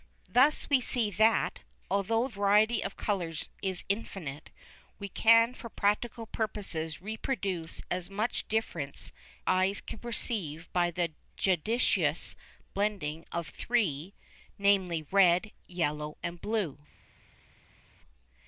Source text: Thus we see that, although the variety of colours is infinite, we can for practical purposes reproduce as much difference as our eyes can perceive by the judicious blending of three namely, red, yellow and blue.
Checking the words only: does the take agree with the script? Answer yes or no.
no